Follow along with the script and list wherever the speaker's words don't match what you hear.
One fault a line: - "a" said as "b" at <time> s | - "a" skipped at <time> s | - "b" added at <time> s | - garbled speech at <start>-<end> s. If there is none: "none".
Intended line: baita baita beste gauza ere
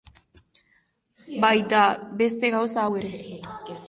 - "baita" skipped at 1.8 s
- "hau" added at 2.8 s